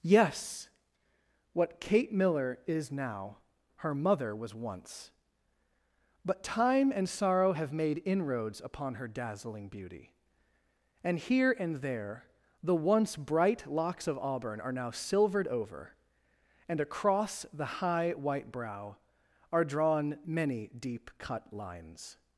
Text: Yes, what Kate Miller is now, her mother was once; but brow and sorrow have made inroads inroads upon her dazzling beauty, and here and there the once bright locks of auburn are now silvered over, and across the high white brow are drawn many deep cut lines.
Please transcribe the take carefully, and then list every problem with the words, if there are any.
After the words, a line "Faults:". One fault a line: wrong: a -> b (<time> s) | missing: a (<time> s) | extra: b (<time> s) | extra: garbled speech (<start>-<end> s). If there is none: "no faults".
Yes, what Kate Miller is now, her mother was once; but time and sorrow have made inroads upon her dazzling beauty, and here and there the once bright locks of auburn are now silvered over, and across the high white brow are drawn many deep cut lines.
Faults:
wrong: brow -> time (6.4 s)
missing: inroads (8.6 s)